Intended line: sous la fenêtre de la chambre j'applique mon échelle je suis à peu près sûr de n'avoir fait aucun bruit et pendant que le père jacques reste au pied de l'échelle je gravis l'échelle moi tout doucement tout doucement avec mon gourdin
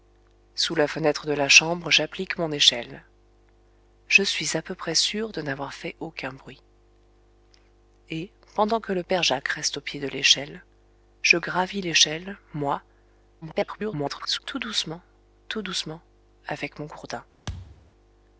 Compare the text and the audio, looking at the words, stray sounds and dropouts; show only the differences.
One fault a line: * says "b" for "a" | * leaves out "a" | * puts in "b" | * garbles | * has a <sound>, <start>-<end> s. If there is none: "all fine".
* garbles
* has a thud, 17.5-17.9 s